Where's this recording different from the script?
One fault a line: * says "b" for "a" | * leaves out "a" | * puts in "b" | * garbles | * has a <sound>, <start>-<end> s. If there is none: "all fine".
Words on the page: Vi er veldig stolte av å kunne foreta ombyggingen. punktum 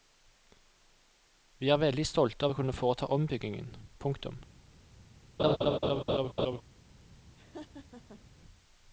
* has a laugh, 5.4-6.6 s
* has a laugh, 7.4-8.2 s